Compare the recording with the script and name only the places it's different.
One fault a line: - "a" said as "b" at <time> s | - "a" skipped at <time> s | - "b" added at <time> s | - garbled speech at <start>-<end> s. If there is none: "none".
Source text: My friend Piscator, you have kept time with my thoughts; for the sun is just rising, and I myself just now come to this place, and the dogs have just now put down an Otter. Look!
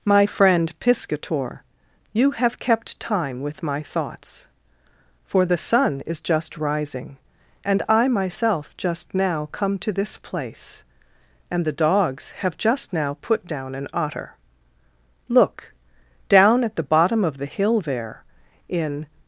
- "down at the bottom of the hill there in" added at 16.3 s